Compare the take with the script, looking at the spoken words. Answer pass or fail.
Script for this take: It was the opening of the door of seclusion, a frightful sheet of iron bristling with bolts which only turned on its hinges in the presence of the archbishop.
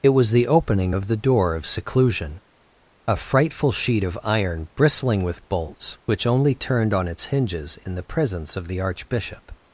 pass